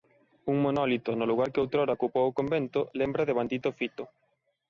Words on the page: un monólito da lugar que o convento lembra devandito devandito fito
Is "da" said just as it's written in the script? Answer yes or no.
no